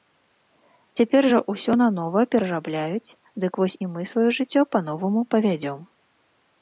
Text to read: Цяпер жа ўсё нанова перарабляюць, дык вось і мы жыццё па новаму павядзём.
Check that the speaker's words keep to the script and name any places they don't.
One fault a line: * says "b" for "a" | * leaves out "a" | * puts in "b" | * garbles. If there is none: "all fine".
* puts in "сваё"